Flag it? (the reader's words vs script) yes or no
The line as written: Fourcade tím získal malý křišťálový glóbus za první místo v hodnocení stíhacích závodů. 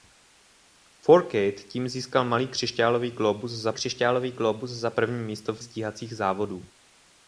yes